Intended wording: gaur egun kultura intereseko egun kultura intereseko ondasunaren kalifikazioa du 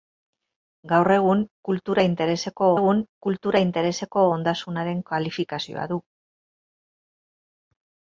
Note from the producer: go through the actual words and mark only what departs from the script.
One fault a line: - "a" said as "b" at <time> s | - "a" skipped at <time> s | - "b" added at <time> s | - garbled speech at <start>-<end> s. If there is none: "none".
none